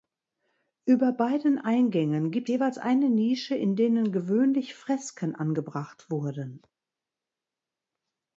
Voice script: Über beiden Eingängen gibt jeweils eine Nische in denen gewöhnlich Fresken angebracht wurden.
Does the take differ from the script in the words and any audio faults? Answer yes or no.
no